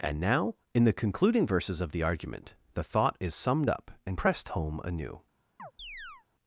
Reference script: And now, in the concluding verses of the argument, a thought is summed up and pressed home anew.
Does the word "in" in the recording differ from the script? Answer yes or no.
no